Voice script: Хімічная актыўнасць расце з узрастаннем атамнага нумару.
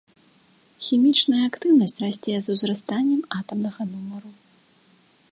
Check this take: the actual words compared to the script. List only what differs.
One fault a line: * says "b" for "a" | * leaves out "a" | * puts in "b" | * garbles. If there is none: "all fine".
all fine